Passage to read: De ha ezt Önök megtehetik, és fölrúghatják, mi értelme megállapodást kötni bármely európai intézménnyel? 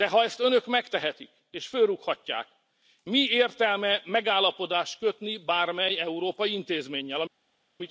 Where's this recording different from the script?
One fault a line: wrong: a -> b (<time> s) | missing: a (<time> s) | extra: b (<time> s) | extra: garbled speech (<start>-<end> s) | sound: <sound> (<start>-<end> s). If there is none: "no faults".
no faults